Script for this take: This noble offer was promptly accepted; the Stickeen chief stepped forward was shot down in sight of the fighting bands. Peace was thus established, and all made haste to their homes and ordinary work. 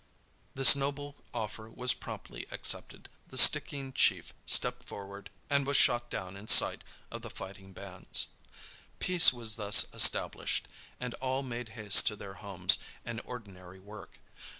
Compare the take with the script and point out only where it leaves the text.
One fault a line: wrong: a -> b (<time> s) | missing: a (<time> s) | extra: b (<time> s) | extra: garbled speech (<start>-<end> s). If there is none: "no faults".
extra: and (5.5 s)